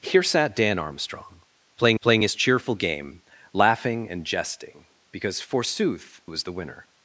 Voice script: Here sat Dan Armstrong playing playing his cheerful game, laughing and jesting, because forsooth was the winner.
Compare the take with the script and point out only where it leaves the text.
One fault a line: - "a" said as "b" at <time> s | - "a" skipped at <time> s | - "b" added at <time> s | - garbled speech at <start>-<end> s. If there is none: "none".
none